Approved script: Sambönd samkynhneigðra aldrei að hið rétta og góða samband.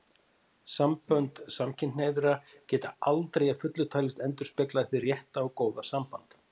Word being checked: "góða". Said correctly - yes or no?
yes